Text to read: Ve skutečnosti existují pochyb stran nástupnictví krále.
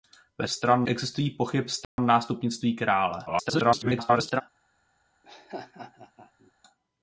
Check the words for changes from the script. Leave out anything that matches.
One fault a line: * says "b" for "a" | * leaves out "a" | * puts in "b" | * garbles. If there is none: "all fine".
* says "stran" for "skutečnosti"
* garbles